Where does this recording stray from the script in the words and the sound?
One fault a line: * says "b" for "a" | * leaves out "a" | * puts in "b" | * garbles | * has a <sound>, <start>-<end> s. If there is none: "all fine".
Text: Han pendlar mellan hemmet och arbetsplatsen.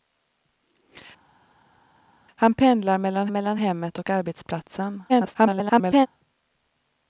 * puts in "mellan"
* garbles